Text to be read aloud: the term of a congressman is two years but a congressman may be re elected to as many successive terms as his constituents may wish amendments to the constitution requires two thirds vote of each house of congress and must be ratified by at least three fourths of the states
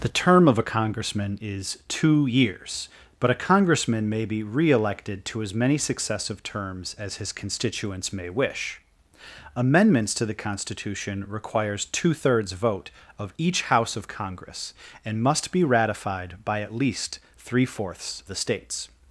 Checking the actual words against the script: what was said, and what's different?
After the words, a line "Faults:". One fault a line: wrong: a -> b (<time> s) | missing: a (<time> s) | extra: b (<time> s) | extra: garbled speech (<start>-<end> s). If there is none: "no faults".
the term of a congressman is two years but a congressman may be re elected to as many successive terms as his constituents may wish amendments to the constitution requires two thirds vote of each house of congress and must be ratified by at least three fourths the states
Faults:
missing: of (18.2 s)